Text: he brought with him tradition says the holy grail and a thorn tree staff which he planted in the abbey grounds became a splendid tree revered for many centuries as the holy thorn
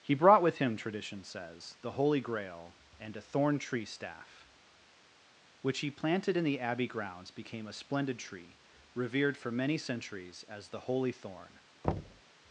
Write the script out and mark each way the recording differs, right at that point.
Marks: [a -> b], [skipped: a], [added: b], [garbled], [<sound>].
he brought with him tradition says the holy grail and a thorn tree staff which he planted in the abbey grounds became a splendid tree revered for many centuries as the holy thorn [thud]